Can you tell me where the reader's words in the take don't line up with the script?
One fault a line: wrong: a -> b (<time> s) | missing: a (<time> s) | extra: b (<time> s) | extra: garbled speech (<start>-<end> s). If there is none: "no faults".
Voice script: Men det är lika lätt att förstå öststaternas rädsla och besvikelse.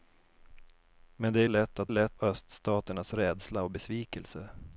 missing: lika (1.5 s)
wrong: förstå -> lätt (1.9 s)